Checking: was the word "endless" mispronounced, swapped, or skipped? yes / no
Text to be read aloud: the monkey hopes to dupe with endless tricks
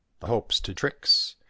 yes